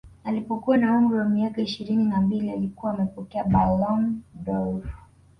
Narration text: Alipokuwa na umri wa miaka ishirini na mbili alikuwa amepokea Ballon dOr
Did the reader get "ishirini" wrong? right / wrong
right